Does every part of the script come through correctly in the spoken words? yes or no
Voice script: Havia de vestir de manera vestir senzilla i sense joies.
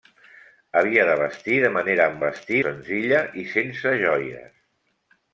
yes